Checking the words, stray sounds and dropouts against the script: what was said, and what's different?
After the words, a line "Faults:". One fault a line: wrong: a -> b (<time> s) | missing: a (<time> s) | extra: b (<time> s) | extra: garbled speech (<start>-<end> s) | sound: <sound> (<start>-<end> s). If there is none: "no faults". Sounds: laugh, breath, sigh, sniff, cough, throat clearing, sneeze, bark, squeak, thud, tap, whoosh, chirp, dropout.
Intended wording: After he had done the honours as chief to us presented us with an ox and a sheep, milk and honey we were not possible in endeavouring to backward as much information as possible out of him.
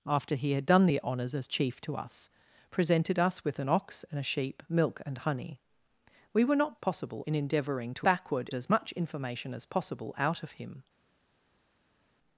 After he had done the honours as chief to us presented us with an ox and a sheep, milk and honey we were not possible in endeavouring to backward as much information as possible out of him.
Faults:
no faults